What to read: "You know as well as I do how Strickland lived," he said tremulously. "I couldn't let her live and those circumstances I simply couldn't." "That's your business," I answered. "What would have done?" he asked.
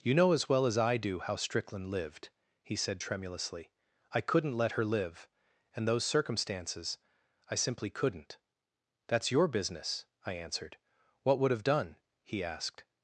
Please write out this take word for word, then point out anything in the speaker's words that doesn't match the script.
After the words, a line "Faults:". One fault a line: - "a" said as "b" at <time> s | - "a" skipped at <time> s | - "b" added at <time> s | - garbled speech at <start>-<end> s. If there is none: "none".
"You know as well as I do how Strickland lived," he said tremulously. "I couldn't let her live and those circumstances I simply couldn't." "That's your business," I answered. "What would have done?" he asked.
Faults:
none